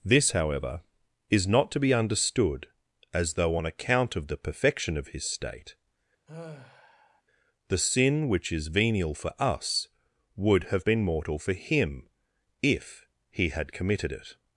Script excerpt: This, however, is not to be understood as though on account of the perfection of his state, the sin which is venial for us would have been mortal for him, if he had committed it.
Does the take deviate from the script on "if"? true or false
false